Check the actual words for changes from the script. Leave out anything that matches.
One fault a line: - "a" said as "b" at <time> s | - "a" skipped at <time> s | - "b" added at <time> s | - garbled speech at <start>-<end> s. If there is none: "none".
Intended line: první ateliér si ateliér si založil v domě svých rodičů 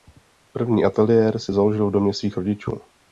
- "ateliér si" skipped at 1.5 s